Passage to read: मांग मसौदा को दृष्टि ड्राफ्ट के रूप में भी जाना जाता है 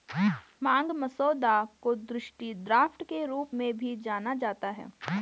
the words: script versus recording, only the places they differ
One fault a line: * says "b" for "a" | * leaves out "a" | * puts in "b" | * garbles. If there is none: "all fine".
all fine